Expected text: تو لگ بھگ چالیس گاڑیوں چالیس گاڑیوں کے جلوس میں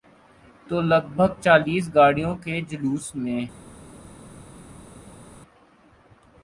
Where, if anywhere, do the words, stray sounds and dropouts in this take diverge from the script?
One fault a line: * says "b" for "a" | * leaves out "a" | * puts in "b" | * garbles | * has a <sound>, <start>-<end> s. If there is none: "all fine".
* leaves out "چالیس گاڑیوں"